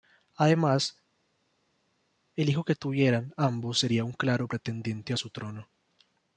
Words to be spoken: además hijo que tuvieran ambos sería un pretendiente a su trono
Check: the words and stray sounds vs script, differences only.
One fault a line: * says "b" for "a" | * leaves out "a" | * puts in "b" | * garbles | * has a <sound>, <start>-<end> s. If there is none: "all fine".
* puts in "el"
* puts in "claro"